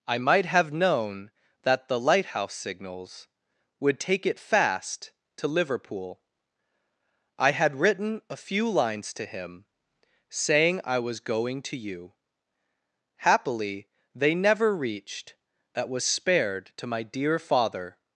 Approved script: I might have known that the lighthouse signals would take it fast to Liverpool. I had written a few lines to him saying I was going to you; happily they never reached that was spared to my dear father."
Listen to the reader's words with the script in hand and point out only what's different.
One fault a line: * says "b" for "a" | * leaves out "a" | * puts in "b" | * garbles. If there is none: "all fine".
all fine